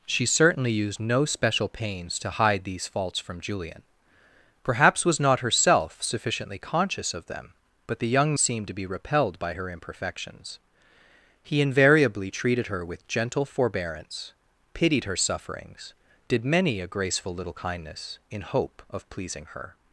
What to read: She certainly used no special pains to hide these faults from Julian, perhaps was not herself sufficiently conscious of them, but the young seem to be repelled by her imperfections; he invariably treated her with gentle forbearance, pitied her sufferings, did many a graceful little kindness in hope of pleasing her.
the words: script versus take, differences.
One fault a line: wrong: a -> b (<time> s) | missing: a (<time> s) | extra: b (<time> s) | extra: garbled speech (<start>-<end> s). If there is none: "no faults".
no faults